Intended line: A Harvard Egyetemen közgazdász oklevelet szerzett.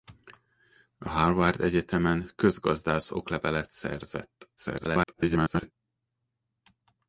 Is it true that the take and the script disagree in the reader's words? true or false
true